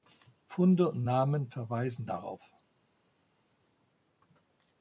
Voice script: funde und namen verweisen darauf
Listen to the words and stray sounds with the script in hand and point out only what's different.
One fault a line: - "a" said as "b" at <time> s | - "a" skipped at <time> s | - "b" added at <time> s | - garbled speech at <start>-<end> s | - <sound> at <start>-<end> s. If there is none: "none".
none